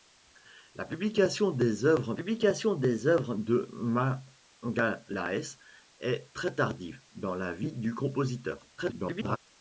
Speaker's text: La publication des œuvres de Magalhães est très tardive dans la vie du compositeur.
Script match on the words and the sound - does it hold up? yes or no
no